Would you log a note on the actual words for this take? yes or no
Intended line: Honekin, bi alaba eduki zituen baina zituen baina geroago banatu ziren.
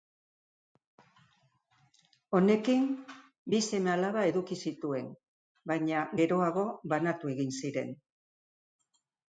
yes